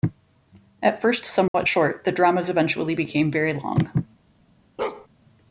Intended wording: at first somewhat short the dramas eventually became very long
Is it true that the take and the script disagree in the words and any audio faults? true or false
true